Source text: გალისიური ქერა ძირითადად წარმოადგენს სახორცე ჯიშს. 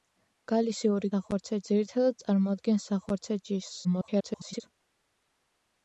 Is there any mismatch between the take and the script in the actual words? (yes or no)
yes